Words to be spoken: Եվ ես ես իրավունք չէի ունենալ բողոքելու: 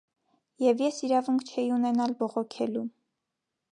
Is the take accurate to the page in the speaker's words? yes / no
no